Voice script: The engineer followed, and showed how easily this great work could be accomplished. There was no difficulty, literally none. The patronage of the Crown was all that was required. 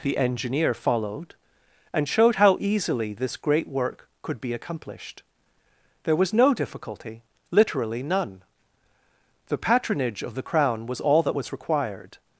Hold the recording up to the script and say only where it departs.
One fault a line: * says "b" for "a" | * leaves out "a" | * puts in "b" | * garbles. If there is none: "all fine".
all fine